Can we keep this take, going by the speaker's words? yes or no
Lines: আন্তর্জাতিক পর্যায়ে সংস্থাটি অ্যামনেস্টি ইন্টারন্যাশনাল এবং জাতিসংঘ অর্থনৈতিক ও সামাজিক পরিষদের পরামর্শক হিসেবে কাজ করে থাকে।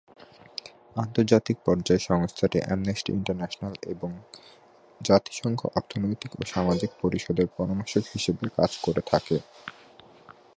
yes